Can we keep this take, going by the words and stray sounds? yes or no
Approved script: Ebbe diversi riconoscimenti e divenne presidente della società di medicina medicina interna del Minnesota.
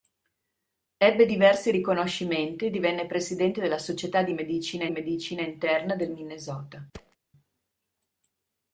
no